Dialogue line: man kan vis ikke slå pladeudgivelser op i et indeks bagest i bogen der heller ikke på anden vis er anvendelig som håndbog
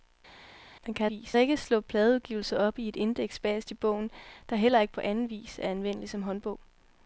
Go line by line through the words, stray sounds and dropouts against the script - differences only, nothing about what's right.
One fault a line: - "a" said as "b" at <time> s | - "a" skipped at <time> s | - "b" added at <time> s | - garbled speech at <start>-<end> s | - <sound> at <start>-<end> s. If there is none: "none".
none